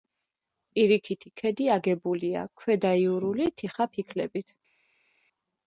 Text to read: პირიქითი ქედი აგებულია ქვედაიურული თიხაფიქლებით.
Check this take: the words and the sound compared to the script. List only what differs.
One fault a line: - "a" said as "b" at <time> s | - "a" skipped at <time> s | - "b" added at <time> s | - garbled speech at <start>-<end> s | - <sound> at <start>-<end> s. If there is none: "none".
none